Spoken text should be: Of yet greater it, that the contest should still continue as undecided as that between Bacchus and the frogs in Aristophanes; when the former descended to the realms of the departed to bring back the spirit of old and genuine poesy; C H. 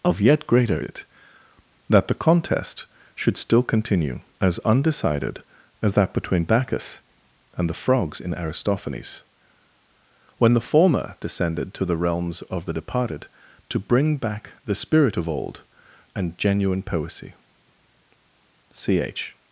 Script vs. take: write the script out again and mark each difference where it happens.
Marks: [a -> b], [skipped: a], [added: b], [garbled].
Of yet greater it, that the contest should still continue as undecided as that between Bacchus and the frogs in Aristophanes; when the former descended to the realms of the departed to bring back the spirit of old and genuine poesy; C H.